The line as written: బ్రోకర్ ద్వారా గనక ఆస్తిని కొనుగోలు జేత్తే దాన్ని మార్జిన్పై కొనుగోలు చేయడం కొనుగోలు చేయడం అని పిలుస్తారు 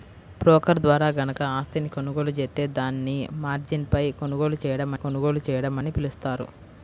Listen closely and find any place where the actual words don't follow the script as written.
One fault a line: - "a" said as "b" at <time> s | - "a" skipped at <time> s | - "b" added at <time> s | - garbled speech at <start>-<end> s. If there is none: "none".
none